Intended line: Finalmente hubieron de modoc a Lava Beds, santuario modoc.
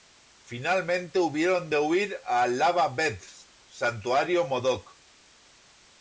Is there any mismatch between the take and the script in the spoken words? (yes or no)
yes